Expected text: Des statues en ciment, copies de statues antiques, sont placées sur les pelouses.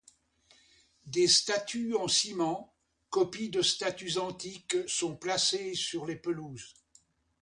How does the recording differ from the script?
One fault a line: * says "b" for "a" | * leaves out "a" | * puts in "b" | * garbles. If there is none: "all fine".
all fine